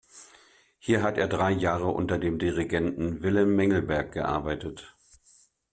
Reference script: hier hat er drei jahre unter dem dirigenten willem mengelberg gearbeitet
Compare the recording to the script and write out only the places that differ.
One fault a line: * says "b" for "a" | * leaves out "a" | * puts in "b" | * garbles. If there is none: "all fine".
all fine